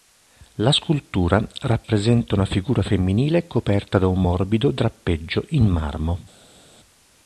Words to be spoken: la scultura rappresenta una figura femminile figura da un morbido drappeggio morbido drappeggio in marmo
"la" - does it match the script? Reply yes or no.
yes